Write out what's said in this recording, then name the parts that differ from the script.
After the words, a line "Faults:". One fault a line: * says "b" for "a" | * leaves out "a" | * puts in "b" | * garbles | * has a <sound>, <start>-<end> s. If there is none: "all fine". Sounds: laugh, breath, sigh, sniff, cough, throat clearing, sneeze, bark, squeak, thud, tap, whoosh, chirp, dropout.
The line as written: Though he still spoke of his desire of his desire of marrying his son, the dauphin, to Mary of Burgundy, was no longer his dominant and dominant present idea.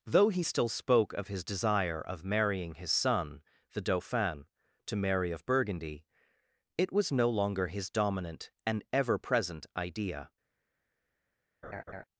Though he still spoke of his desire of marrying his son, the dauphin, to Mary of Burgundy, it was no longer his dominant and ever present idea.
Faults:
* leaves out "his desire of"
* puts in "it"
* says "ever" for "dominant"
* has a laugh, 11.6-12.0 s